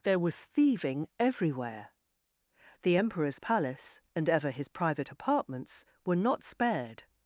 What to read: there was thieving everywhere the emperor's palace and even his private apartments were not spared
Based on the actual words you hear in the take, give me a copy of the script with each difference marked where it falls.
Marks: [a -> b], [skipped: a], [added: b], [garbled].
there was thieving everywhere the emperor's palace and [even -> ever] his private apartments were not spared